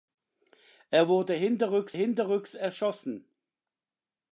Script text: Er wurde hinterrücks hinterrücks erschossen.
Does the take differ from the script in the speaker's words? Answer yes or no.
no